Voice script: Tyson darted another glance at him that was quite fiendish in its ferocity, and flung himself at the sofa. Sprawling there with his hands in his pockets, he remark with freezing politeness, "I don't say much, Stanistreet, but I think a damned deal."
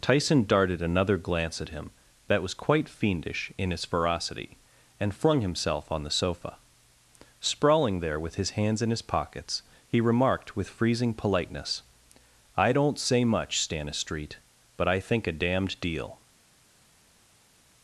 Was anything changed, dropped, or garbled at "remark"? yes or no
yes